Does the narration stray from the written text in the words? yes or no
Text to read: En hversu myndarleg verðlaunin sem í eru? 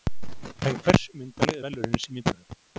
no